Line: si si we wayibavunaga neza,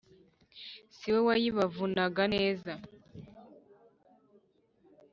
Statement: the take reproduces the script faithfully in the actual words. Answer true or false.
false